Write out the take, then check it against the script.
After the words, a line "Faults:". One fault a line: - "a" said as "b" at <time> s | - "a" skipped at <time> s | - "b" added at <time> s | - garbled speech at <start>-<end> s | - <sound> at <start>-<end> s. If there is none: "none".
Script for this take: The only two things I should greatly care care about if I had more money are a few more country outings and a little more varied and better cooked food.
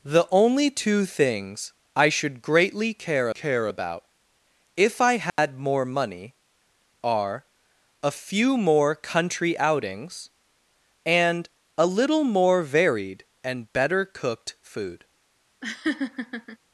The only two things I should greatly care care about if I had more money are a few more country outings and a little more varied and better cooked food.
Faults:
- dropout at 5.3-5.4 s
- laugh at 15.6-16.6 s